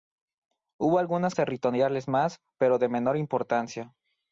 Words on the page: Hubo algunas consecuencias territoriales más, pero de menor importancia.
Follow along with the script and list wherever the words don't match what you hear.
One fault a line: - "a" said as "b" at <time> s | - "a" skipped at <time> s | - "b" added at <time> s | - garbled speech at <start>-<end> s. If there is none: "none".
- "consecuencias" skipped at 1.4 s